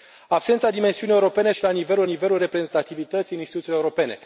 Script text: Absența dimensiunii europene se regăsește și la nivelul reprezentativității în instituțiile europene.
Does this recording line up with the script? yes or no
no